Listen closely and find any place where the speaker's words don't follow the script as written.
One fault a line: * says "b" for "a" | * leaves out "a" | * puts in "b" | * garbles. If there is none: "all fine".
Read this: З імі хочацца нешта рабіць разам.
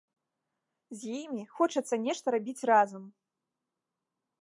all fine